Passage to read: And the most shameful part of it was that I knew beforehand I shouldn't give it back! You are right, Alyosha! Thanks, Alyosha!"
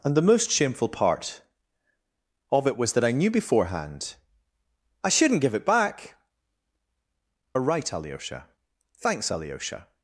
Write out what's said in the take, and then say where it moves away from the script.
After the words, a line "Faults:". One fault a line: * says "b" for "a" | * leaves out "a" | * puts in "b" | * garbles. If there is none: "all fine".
And the most shameful part of it was that I knew beforehand I shouldn't give it back! Are right, Alyosha! Thanks, Alyosha!"
Faults:
* leaves out "You"